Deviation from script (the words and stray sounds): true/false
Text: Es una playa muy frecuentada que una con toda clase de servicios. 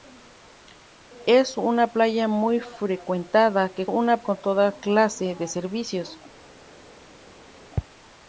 false